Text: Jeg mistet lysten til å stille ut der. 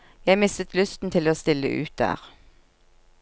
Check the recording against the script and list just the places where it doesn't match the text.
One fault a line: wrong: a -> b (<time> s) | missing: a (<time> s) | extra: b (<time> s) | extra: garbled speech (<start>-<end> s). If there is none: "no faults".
no faults